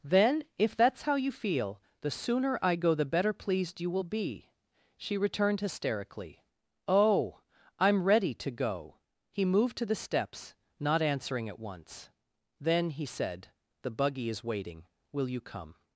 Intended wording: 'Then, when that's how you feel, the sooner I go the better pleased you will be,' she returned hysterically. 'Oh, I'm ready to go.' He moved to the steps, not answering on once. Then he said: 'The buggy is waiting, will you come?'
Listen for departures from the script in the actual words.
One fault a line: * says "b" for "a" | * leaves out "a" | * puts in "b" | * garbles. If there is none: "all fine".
* says "if" for "when"
* says "at" for "on"